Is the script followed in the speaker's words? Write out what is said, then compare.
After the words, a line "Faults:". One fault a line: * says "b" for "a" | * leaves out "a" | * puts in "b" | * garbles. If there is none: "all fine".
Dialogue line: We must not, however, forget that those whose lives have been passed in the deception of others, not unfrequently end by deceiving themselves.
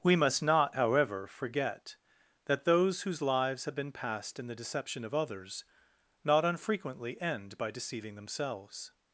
We must not, however, forget that those whose lives have been passed in the deception of others, not unfrequently end by deceiving themselves.
Faults:
all fine